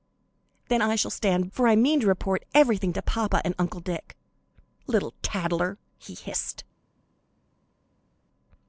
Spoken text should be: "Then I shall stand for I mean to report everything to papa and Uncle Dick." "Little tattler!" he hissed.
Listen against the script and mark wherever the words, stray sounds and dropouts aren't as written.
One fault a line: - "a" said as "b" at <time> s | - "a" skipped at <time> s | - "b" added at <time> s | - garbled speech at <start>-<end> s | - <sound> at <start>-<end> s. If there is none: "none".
none